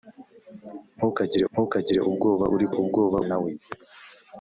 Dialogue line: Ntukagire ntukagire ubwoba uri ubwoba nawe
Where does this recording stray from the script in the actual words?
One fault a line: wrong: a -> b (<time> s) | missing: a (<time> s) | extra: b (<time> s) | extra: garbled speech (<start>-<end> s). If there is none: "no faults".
no faults